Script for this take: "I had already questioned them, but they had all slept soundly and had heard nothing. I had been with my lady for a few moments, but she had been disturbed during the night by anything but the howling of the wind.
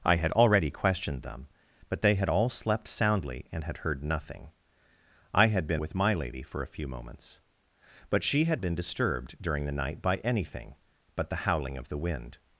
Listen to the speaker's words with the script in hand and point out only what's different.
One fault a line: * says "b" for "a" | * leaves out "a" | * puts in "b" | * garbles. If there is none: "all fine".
all fine